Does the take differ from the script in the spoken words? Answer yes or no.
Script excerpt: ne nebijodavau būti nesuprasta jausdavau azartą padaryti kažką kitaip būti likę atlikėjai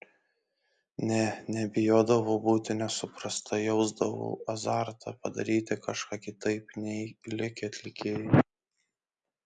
yes